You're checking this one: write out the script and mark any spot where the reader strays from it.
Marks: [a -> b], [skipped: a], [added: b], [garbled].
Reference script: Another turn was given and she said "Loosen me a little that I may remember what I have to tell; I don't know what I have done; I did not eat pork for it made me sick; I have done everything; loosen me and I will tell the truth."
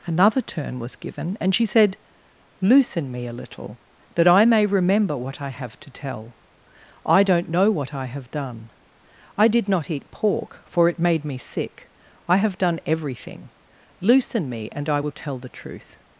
Another turn was given and she said "Loosen me a little that I may remember what I have to tell; I don't know what I have done; I did not eat pork for it made me sick; I have done everything; loosen me and I will tell the truth."